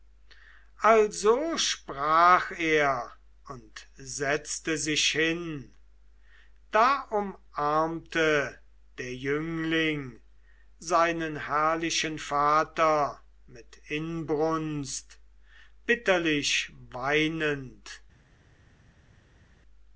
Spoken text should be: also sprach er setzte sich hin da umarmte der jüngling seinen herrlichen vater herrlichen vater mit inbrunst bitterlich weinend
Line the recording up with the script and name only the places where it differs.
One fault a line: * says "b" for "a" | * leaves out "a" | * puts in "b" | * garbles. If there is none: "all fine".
* puts in "und"
* leaves out "herrlichen vater"